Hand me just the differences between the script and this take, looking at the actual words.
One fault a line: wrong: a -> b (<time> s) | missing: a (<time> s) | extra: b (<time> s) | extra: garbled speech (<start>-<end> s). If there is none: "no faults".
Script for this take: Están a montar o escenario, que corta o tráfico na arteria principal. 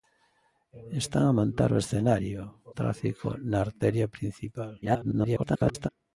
missing: que corta (2.4 s)
extra: garbled speech (4.8-5.9 s)